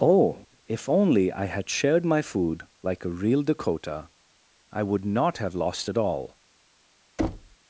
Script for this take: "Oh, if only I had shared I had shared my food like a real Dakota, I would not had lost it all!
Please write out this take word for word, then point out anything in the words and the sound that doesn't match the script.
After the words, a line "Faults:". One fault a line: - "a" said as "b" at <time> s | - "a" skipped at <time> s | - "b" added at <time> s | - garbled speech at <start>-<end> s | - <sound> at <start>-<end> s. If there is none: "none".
"Oh, if only I had shared my food like a real Dakota, I would not have lost it all!
Faults:
- "I had shared" skipped at 2.0 s
- "had" said as "have" at 5.4 s
- thud at 7.2-7.6 s